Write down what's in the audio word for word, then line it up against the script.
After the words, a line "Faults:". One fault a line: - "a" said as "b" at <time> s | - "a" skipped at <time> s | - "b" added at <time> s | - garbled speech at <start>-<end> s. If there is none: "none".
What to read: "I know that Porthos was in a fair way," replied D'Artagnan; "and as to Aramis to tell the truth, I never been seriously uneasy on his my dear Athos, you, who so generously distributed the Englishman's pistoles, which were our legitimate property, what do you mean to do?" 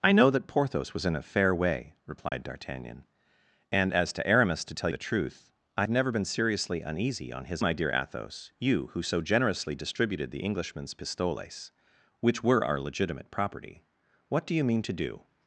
"I know that Porthos was in a fair way," replied D'Artagnan; "and as to Aramis to tell the truth, I never been seriously uneasy on his my dear Athos, you, who so generously distributed the Englishman's pistoles, which were our legitimate property, what do you mean to do?"
Faults:
none